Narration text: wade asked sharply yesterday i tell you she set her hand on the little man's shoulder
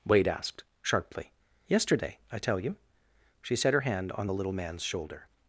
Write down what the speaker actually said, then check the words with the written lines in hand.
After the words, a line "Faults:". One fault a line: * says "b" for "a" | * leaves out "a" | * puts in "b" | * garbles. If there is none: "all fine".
wade asked sharply yesterday i tell you she set her hand on the little man's shoulder
Faults:
all fine